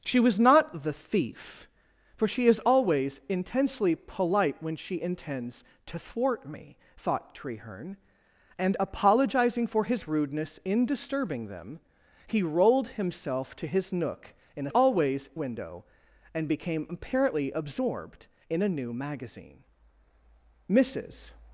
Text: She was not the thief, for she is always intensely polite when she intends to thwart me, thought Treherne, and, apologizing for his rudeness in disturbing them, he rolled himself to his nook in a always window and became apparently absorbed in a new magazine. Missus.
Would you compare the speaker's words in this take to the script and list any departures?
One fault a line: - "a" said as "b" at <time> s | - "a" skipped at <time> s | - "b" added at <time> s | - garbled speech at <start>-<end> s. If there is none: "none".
none